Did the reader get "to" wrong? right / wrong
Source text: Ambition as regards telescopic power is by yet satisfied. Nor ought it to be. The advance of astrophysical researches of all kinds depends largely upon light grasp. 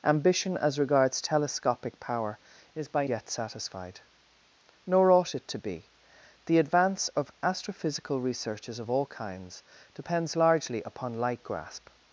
right